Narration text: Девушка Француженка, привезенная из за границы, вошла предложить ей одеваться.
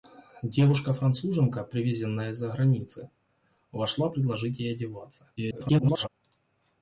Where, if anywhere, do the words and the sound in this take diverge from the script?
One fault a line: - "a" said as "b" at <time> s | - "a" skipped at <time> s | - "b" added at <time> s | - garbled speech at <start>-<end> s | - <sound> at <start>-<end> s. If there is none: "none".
- garbled speech at 5.4-6.1 s